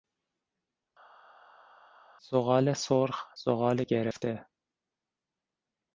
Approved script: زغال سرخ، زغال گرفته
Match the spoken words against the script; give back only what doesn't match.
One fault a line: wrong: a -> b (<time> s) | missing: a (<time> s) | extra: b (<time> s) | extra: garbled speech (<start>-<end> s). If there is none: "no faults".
no faults